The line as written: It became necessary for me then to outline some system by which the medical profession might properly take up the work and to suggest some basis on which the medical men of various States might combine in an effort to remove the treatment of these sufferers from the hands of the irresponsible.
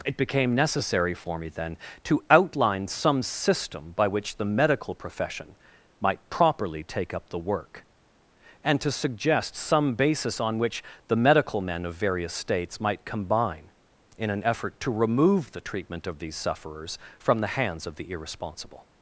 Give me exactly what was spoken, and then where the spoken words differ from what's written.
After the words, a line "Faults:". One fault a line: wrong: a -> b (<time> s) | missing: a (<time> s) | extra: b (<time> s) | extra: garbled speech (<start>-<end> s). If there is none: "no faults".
It became necessary for me then to outline some system by which the medical profession might properly take up the work and to suggest some basis on which the medical men of various States might combine in an effort to remove the treatment of these sufferers from the hands of the irresponsible.
Faults:
no faults